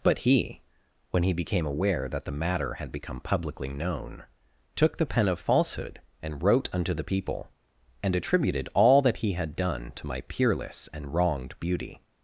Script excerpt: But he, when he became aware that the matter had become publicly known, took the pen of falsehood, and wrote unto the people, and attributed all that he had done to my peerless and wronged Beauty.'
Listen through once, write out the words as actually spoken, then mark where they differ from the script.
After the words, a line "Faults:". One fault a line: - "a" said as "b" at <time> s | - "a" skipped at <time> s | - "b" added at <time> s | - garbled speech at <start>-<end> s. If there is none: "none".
But he, when he became aware that the matter had become publicly known, took the pen of falsehood, and wrote unto the people, and attributed all that he had done to my peerless and wronged Beauty.'
Faults:
none